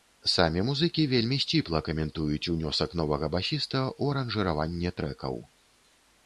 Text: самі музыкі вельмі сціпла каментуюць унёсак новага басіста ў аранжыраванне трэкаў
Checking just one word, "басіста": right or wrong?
right